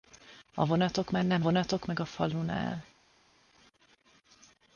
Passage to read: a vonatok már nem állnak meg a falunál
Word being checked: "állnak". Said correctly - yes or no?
no